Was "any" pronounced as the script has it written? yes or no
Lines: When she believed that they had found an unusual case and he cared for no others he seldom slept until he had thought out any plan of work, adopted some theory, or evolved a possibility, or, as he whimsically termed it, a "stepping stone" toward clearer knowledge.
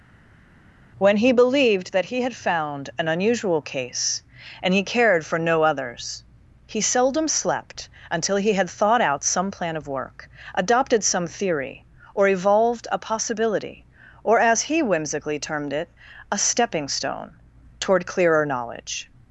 no